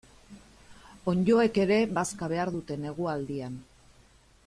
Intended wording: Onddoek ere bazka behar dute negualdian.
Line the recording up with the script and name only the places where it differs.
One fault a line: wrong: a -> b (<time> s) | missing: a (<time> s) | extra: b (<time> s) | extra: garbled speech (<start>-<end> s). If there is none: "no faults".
no faults